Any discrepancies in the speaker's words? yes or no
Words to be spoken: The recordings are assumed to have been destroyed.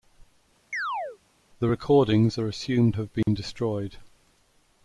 yes